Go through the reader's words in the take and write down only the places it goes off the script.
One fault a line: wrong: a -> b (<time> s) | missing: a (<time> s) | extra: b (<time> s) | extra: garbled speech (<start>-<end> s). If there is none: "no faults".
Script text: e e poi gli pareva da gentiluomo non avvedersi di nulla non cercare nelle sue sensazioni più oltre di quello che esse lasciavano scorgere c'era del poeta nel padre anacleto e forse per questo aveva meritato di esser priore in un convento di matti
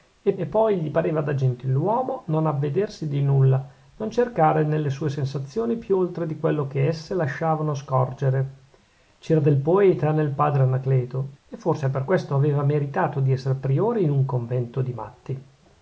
no faults